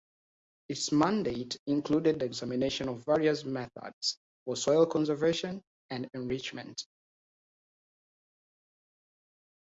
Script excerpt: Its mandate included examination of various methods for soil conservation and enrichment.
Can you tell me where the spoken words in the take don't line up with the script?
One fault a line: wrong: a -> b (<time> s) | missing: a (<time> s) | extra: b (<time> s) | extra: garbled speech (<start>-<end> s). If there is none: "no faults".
no faults